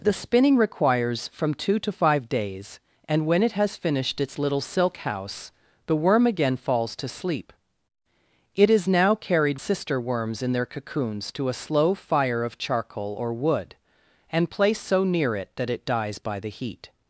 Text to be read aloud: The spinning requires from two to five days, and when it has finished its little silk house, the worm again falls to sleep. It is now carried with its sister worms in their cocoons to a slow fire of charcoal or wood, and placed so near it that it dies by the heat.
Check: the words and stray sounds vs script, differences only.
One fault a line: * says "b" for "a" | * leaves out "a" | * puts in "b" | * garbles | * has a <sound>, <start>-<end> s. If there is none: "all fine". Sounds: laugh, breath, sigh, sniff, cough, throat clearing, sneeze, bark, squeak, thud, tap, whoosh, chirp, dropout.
* leaves out "with its"